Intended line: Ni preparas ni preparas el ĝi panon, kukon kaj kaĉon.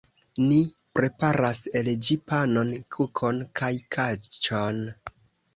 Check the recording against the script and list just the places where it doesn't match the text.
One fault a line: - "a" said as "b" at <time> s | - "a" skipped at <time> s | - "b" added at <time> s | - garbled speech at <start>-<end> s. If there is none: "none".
- "ni preparas" skipped at 1.6 s